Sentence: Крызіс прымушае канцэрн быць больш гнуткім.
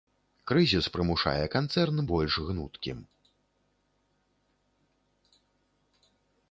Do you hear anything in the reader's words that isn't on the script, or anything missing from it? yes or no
yes